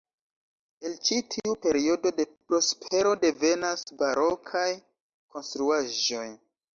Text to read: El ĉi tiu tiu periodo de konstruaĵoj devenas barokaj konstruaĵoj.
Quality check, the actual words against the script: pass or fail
fail